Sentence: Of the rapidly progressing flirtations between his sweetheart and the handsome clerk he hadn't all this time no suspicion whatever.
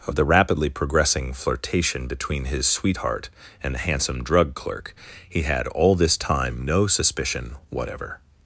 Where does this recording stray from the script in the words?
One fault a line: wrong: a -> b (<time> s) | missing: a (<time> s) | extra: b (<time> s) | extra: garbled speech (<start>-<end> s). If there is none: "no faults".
wrong: flirtations -> flirtation (1.3 s)
extra: drug (4.2 s)
wrong: hadn't -> had (5.4 s)